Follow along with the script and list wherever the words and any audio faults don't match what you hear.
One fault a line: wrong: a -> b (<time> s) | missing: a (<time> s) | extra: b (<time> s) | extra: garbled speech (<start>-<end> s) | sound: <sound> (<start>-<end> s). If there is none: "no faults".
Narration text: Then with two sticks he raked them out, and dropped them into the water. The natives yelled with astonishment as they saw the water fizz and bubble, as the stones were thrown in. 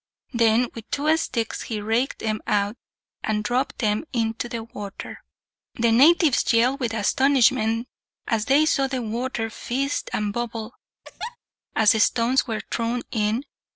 sound: laugh (11.0-11.4 s)